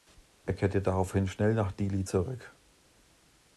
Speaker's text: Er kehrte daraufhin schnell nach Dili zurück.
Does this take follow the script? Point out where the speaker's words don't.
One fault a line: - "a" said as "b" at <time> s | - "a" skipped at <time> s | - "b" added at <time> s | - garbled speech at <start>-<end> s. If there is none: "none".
none